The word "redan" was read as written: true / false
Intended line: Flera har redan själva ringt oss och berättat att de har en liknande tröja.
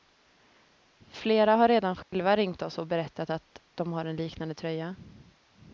true